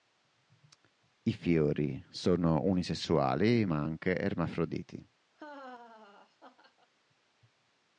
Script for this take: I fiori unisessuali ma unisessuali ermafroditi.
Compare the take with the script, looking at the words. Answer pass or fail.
fail